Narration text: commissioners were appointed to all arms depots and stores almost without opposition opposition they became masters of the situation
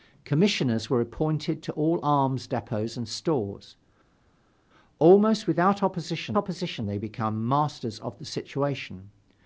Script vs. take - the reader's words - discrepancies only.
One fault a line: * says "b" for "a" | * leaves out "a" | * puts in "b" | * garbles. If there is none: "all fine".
all fine